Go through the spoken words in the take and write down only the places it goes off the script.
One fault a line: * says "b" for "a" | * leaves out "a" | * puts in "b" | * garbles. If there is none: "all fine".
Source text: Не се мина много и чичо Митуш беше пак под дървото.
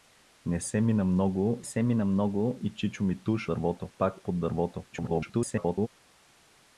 * puts in "се мина много"
* says "дървото" for "беше"
* garbles